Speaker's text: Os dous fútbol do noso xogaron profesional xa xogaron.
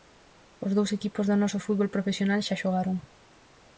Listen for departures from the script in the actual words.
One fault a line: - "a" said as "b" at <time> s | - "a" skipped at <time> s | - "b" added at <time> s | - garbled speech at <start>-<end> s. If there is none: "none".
- "fútbol" said as "equipos" at 1.0 s
- "xogaron" said as "fútbol" at 1.6 s